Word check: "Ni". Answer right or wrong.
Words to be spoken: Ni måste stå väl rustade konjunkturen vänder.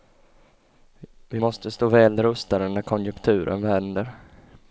wrong